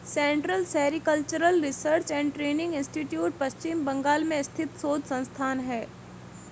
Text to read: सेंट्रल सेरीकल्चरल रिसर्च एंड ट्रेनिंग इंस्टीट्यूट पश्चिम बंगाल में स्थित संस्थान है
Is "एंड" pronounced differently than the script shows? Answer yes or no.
no